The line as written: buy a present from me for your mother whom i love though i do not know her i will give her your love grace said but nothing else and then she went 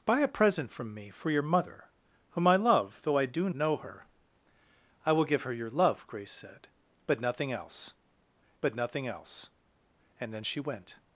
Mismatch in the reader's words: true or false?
true